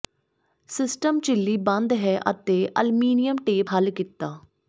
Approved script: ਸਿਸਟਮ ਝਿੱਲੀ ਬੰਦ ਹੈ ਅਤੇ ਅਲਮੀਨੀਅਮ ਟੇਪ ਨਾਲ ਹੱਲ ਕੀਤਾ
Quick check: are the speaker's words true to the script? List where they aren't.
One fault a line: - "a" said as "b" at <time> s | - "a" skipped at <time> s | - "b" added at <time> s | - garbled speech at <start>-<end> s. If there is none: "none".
- "ਨਾਲ" skipped at 3.7 s